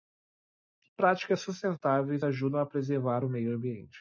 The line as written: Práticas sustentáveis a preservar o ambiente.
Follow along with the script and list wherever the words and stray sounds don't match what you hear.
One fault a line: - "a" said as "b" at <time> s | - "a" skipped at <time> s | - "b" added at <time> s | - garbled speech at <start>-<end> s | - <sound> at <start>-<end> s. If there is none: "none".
- "ajudam" added at 2.2 s
- "meio" added at 3.3 s